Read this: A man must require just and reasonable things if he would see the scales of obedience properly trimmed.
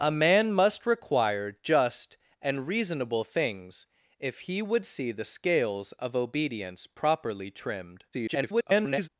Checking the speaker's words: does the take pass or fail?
fail